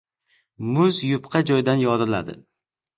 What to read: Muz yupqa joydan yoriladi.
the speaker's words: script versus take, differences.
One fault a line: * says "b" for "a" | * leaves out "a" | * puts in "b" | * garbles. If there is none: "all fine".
all fine